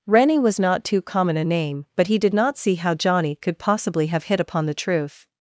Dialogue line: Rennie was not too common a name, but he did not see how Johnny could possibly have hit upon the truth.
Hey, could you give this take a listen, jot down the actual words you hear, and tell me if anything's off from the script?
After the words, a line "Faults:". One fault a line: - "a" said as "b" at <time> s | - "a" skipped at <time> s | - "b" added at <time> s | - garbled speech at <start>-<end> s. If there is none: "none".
Rennie was not too common a name, but he did not see how Johnny could possibly have hit upon the truth.
Faults:
none